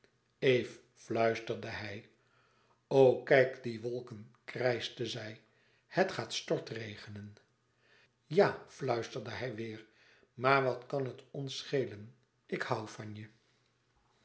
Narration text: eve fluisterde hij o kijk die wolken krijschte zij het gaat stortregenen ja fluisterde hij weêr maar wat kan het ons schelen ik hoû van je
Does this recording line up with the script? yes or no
yes